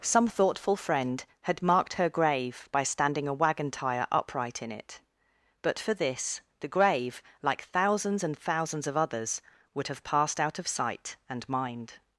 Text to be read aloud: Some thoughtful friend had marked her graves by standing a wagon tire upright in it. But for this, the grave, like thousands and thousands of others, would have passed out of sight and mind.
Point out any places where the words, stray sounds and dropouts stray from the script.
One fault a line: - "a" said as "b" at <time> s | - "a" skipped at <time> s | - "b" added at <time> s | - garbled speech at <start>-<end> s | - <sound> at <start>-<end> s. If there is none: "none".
- "graves" said as "grave" at 2.1 s